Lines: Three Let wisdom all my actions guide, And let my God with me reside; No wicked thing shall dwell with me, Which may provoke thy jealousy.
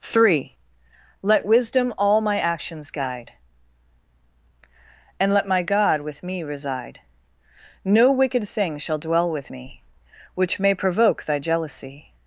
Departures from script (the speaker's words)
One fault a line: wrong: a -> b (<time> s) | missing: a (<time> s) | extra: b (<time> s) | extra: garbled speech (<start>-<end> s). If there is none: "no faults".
no faults